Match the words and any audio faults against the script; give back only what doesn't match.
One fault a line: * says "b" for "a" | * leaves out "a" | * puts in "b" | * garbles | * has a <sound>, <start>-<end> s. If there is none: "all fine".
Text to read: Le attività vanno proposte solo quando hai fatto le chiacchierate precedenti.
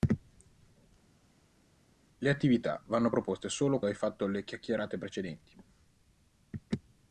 * leaves out "quando"